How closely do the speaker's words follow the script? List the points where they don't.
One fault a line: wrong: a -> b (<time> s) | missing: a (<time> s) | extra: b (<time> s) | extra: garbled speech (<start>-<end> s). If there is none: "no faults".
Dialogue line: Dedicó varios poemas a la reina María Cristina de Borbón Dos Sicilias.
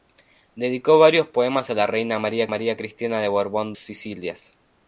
extra: María (2.5 s)
missing: Dos (3.7 s)